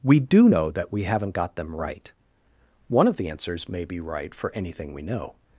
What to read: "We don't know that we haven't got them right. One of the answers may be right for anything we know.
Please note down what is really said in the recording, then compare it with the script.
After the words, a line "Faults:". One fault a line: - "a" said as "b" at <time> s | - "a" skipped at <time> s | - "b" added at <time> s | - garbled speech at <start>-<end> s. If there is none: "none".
"We do know that we haven't got them right. One of the answers may be right for anything we know.
Faults:
- "don't" said as "do" at 0.2 s